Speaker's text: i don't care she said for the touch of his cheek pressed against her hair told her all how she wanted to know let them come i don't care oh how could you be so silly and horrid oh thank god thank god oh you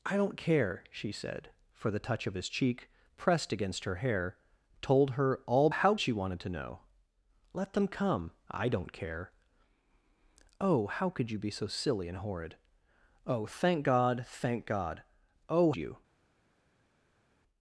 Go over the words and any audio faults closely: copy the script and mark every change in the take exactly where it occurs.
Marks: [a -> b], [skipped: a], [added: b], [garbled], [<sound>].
i don't care she said for the touch of his cheek pressed against her hair told her all how she wanted to know let them come i don't care oh how could you be so silly and horrid oh thank god thank god oh you